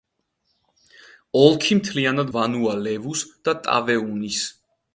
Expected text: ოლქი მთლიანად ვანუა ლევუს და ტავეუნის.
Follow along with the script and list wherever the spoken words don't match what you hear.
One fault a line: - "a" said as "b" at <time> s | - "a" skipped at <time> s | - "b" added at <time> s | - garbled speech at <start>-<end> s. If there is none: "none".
none